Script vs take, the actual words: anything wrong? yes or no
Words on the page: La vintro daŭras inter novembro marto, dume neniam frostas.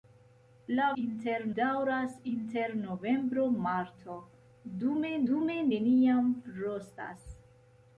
yes